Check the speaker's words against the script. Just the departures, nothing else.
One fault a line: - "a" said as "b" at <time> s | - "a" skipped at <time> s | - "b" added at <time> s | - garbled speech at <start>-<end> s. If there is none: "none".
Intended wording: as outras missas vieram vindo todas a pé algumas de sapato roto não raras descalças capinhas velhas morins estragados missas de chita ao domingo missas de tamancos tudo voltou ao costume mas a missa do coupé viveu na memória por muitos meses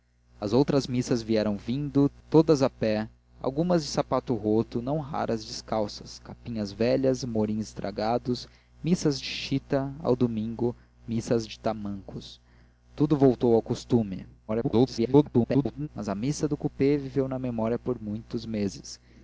- garbled speech at 14.5-15.9 s